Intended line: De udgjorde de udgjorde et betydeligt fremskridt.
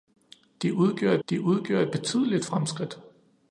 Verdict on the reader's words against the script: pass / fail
pass